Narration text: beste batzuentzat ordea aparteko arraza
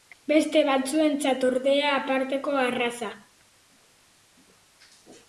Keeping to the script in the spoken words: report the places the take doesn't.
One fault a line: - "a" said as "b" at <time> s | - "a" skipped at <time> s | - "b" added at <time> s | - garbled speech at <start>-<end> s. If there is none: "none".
none